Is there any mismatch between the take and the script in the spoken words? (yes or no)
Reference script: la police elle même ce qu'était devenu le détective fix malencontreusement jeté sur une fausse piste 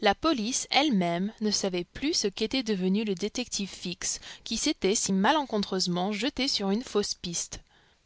yes